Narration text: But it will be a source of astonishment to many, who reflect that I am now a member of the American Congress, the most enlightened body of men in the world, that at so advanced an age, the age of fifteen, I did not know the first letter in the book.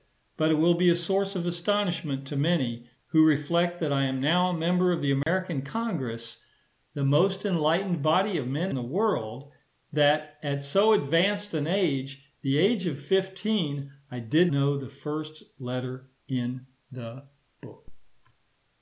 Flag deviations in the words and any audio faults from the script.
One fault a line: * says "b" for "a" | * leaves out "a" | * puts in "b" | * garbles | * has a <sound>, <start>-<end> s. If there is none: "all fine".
* has a dropout, 5.2-5.3 s
* leaves out "in"
* leaves out "not"